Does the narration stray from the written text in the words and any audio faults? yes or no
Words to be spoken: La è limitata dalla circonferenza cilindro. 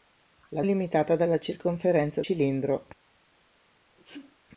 yes